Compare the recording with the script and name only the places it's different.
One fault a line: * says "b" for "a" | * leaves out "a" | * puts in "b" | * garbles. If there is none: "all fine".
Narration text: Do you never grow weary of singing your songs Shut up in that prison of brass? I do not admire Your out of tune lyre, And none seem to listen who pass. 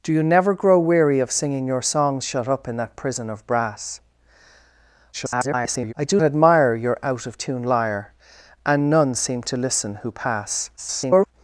* garbles
* leaves out "not"
* garbles